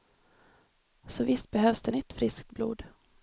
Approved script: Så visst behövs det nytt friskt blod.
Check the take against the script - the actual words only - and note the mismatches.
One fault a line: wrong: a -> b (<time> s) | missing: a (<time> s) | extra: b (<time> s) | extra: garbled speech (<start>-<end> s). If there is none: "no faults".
no faults